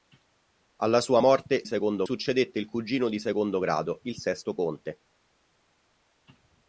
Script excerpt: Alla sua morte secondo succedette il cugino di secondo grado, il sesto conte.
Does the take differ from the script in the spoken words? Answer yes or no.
no